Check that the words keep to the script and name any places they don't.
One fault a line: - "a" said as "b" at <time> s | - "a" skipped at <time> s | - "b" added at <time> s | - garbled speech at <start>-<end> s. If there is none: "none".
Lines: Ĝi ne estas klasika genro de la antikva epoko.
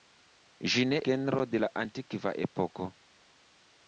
- "estas klasika" skipped at 1.0 s